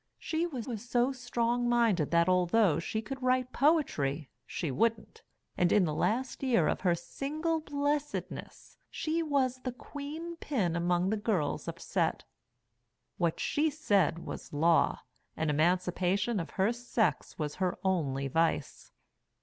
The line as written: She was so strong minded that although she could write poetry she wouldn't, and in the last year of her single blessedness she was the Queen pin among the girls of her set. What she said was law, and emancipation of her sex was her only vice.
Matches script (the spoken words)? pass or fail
fail